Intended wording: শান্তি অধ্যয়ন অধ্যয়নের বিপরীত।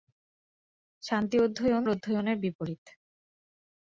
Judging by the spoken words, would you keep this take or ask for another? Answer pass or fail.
pass